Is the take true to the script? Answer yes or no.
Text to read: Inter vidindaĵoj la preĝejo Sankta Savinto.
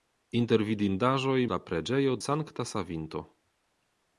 yes